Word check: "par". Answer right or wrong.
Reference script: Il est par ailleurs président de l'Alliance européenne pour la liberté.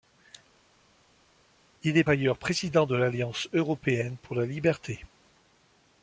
wrong